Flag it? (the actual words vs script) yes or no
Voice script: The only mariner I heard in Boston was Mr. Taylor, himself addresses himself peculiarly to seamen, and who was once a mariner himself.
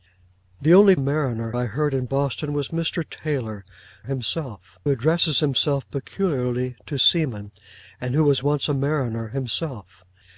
no